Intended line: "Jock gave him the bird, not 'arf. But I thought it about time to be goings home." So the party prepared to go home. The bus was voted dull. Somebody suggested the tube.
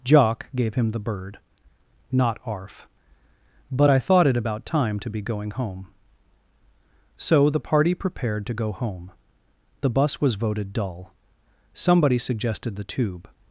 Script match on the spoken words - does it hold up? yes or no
no